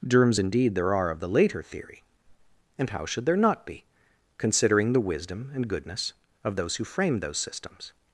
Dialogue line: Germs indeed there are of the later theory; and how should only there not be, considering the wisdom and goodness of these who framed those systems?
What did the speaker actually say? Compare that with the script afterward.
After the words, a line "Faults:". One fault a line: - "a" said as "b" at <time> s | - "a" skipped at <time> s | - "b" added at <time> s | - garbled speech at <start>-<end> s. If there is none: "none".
Germs indeed there are of the later theory; and how should there not be, considering the wisdom and goodness of those who framed those systems?
Faults:
- "only" skipped at 3.3 s
- "these" said as "those" at 6.6 s